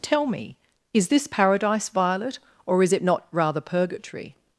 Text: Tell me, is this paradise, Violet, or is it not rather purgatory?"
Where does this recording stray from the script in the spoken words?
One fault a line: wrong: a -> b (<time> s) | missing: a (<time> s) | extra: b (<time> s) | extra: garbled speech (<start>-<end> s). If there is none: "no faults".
no faults